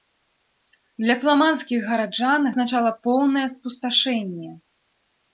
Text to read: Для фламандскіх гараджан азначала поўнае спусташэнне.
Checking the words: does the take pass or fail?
pass